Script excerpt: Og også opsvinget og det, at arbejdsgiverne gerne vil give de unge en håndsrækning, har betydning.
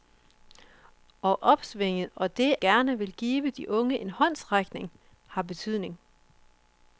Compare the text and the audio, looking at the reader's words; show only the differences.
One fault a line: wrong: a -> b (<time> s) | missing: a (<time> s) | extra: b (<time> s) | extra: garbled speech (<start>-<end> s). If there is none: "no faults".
missing: også (1.4 s)
missing: at arbejdsgiverne (2.5 s)